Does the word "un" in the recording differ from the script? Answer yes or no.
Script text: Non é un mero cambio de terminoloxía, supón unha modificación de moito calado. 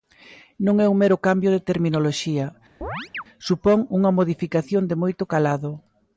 no